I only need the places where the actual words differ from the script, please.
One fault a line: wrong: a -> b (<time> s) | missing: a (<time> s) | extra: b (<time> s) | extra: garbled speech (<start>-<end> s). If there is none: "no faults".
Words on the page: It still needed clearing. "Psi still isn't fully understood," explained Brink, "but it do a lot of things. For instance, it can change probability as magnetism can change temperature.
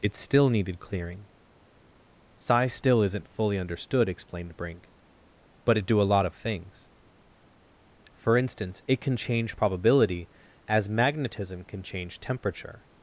no faults